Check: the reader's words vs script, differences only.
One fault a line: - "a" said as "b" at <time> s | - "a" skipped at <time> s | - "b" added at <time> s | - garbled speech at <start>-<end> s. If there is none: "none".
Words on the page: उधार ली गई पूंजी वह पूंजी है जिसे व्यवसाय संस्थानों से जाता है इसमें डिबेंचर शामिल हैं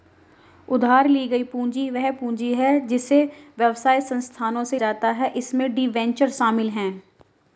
none